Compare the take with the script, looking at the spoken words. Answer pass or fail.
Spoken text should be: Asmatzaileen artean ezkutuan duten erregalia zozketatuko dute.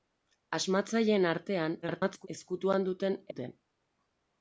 fail